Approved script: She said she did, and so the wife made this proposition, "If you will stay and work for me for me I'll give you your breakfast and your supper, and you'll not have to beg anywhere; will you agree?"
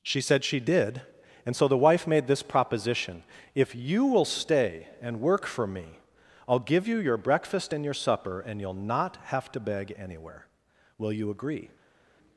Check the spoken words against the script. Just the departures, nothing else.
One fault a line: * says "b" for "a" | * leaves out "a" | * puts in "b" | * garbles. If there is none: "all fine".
* leaves out "for me"